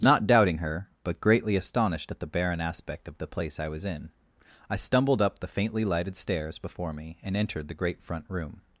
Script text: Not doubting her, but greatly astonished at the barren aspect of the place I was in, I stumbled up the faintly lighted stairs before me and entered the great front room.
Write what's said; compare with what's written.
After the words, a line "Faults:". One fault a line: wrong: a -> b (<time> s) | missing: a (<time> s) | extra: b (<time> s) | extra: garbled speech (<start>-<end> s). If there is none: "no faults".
Not doubting her, but greatly astonished at the barren aspect of the place I was in, I stumbled up the faintly lighted stairs before me and entered the great front room.
Faults:
no faults